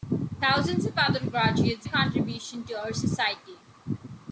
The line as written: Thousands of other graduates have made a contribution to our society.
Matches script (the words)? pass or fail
fail